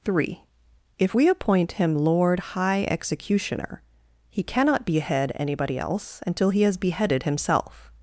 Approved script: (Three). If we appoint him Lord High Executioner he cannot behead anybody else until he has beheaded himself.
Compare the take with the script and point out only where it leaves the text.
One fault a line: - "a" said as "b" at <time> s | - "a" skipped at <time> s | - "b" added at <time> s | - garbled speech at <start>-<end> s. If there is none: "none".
none